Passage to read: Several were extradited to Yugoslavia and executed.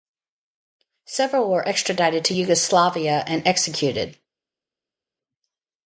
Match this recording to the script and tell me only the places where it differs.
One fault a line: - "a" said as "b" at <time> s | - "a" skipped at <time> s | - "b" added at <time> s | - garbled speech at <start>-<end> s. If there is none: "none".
none